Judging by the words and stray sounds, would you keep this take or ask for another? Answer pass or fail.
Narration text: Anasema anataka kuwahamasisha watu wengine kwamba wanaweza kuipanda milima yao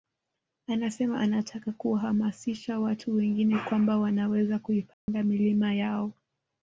fail